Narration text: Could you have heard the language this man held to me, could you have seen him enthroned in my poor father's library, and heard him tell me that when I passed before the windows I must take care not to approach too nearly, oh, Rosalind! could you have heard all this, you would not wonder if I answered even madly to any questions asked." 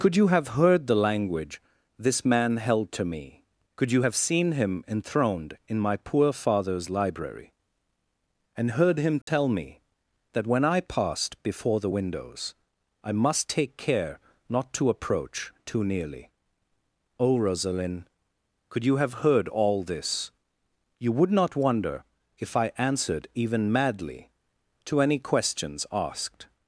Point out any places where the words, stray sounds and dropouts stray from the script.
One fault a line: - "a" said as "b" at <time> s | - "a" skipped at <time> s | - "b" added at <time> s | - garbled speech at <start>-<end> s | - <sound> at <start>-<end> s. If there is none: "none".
- dropout at 9.2-9.3 s